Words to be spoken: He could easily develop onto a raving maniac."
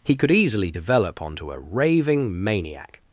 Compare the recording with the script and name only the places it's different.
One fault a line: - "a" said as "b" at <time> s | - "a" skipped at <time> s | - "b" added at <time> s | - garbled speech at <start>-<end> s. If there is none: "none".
none